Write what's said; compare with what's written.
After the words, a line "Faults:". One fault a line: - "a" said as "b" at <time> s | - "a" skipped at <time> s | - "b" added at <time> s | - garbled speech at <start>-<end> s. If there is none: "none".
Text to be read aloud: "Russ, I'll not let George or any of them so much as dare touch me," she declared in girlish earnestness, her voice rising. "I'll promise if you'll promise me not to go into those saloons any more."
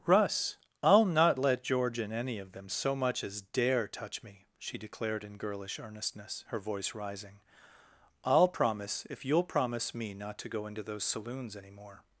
"Russ, I'll not let George and any of them so much as dare touch me," she declared in girlish earnestness, her voice rising. "I'll promise if you'll promise me not to go into those saloons any more."
Faults:
- "or" said as "and" at 2.0 s